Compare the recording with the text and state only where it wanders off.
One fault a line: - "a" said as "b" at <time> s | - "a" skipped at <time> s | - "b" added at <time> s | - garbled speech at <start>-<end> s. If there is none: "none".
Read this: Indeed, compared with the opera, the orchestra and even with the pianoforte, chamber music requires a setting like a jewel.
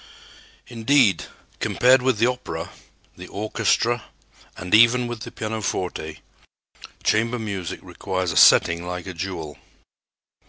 none